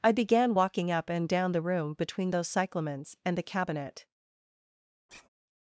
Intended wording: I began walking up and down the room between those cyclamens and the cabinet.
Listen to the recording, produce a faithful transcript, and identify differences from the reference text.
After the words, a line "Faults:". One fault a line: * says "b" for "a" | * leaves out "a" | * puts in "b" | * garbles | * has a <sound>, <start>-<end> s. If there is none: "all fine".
I began walking up and down the room between those cyclamens and the cabinet.
Faults:
* has a sigh, 5.1-5.3 s